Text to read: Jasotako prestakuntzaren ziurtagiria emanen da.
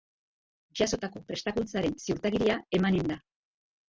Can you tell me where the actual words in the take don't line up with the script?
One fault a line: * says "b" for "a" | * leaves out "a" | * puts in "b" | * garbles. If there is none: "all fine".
all fine